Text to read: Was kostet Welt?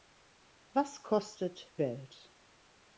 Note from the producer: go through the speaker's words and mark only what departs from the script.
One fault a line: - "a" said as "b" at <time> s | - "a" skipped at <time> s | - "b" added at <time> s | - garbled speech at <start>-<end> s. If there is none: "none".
none